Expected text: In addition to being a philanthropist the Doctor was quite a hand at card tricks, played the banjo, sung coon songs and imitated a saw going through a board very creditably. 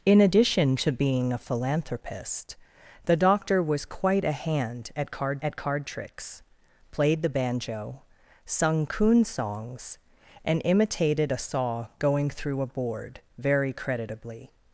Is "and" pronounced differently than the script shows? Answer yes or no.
no